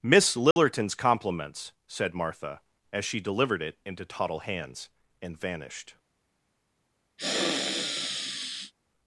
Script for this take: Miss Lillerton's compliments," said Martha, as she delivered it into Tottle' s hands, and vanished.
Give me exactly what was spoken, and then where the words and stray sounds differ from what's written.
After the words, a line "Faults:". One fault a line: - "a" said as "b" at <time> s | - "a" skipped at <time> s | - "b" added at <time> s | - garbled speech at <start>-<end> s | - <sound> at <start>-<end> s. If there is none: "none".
Miss Lillerton's compliments," said Martha, as she delivered it into Tottle' hands, and vanished.
Faults:
- dropout at 0.5-0.6 s
- "s" skipped at 4.4 s
- sniff at 7.2-8.7 s